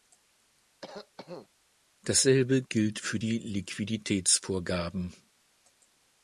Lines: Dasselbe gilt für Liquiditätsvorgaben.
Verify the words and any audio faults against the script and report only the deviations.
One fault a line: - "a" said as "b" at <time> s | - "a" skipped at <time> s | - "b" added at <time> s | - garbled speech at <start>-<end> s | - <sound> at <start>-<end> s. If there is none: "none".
- cough at 0.8-1.5 s
- "die" added at 3.2 s